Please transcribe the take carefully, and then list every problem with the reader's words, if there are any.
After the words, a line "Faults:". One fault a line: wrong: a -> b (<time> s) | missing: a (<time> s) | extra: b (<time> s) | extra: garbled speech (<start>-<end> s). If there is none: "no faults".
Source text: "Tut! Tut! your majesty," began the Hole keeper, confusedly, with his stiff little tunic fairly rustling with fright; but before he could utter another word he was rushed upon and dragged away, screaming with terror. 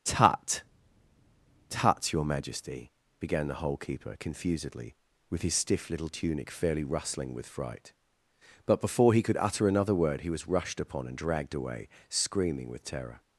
"Tut! Tut! your majesty," began the Hole keeper, confusedly, with his stiff little tunic fairly rustling with fright; but before he could utter another word he was rushed upon and dragged away, screaming with terror.
Faults:
no faults